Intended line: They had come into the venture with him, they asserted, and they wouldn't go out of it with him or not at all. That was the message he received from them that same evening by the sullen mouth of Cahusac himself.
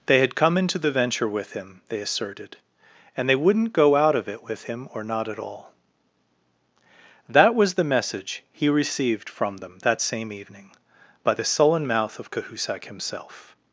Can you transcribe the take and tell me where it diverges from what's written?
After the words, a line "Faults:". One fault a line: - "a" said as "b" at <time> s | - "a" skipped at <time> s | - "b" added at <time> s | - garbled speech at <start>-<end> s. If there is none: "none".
They had come into the venture with him, they asserted, and they wouldn't go out of it with him or not at all. That was the message he received from them that same evening by the sullen mouth of Cahusac himself.
Faults:
none